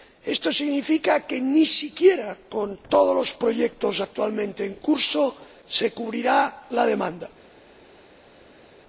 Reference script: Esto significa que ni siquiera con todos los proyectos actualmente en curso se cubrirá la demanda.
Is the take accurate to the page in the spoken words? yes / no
yes